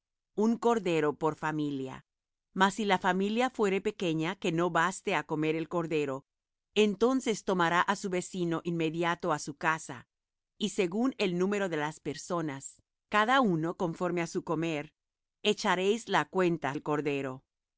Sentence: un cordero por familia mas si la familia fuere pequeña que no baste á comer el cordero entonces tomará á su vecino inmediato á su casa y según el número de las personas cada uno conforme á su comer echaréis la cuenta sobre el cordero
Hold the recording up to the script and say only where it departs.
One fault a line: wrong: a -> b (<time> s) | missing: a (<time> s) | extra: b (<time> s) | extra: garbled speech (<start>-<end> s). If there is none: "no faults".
missing: sobre (16.8 s)